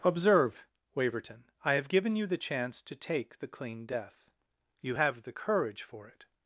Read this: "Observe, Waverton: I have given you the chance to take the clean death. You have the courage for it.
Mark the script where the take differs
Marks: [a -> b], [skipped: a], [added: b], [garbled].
"Observe, Waverton: I have given you the chance to take the clean death. You have the courage for it.